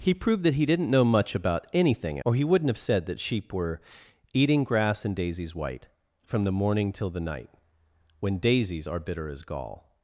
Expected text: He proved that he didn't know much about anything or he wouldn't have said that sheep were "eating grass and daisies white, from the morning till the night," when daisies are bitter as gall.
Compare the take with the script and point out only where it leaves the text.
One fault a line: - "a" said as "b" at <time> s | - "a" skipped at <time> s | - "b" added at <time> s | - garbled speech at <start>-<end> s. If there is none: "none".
none